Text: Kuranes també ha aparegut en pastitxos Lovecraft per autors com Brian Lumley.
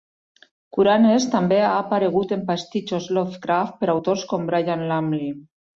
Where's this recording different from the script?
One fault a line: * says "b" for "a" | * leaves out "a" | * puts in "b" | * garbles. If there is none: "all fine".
all fine